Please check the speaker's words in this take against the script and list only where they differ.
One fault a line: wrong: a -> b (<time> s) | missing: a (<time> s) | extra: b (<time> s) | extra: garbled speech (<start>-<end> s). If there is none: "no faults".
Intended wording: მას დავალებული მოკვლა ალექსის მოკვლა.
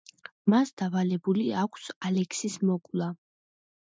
wrong: მოკვლა -> აქვს (1.6 s)